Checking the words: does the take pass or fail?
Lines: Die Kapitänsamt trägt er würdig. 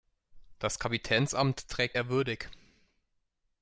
fail